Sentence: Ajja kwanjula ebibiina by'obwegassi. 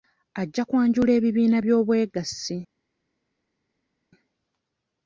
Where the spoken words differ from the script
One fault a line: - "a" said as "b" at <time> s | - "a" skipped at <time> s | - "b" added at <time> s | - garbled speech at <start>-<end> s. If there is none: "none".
none